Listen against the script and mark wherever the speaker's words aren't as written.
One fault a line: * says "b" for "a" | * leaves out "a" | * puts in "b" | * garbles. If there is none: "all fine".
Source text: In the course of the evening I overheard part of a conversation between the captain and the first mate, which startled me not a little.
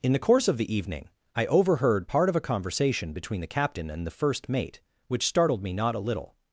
all fine